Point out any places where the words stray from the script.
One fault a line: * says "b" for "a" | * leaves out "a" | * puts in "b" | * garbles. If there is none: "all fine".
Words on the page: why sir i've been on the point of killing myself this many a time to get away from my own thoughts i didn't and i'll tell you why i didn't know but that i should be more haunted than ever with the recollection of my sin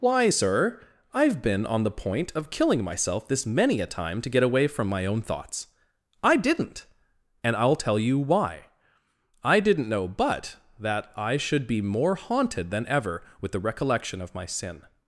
all fine